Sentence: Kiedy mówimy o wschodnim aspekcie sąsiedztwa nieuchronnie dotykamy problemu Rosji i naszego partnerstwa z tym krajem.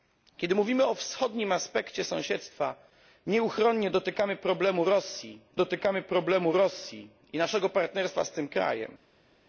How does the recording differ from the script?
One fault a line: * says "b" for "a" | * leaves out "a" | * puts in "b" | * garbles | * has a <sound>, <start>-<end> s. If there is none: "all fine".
* puts in "dotykamy problemu Rosji"